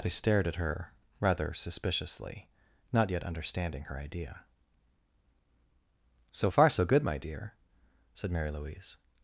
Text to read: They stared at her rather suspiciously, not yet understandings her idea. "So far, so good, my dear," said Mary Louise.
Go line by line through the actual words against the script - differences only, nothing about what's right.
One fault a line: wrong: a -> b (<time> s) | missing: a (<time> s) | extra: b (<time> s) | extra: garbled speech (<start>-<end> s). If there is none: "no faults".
wrong: understandings -> understanding (3.2 s)